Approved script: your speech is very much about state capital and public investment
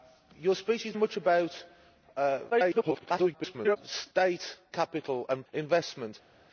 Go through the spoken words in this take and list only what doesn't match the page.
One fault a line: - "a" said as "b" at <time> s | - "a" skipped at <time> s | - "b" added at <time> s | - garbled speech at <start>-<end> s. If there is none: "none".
- "very" skipped at 0.9 s
- garbled speech at 2.5-3.8 s
- "public" skipped at 5.4 s